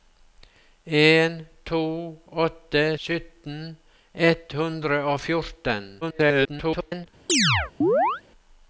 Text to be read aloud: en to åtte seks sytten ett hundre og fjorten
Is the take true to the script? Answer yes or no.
no